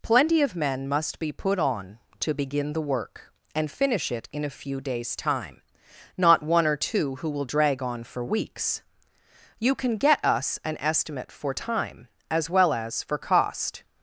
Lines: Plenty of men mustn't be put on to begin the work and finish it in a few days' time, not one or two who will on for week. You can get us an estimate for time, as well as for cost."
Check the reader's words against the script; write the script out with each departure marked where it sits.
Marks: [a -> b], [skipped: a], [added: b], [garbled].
Plenty of men [mustn't -> must] be put on to begin the work and finish it in a few days' time, not one or two who will [added: drag] on for [week. -> weeks] You can get us an estimate for time, as well as for cost."